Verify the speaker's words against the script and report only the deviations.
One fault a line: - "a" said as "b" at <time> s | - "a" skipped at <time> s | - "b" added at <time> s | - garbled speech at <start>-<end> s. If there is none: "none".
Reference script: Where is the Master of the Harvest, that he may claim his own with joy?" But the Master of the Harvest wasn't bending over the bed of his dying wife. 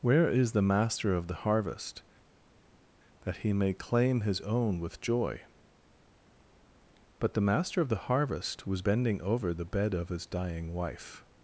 - "wasn't" said as "was" at 8.7 s